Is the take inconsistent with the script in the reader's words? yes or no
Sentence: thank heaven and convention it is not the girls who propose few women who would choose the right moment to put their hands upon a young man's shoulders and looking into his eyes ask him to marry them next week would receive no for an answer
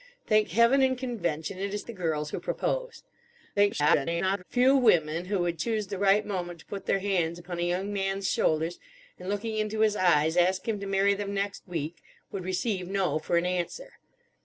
yes